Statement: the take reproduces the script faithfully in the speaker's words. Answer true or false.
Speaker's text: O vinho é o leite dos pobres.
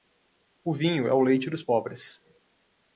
true